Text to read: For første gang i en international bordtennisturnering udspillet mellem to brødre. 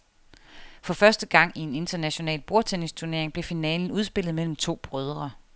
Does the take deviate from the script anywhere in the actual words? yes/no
yes